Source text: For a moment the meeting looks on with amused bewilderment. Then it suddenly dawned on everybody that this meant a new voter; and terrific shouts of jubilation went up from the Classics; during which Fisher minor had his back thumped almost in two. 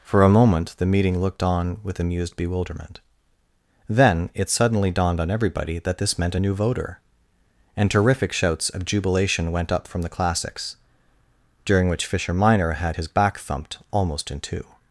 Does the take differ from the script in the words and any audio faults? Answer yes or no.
yes